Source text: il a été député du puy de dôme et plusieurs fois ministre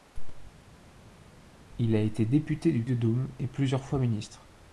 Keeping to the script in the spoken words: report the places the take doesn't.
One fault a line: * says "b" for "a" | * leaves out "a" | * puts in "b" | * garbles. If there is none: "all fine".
* leaves out "puy"